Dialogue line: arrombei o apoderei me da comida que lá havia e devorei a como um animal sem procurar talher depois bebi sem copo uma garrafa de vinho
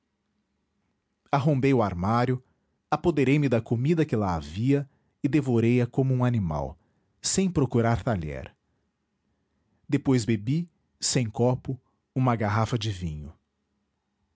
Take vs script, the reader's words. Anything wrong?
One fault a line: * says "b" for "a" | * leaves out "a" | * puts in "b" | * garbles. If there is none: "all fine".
* puts in "armário"